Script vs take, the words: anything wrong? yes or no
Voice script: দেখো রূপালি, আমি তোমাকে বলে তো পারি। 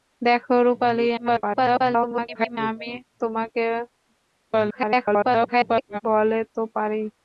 yes